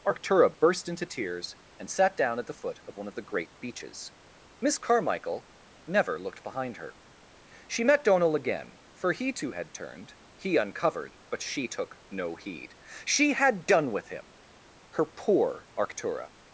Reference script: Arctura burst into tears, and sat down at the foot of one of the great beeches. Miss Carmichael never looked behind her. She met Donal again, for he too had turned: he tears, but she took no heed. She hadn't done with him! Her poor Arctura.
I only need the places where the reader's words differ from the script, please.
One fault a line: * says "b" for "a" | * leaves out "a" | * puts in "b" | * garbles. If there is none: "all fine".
* says "uncovered" for "tears"
* says "had" for "hadn't"